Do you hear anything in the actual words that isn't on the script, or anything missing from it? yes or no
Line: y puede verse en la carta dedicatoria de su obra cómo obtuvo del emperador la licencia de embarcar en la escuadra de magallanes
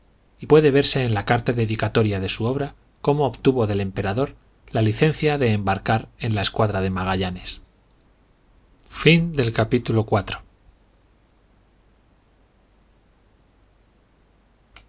no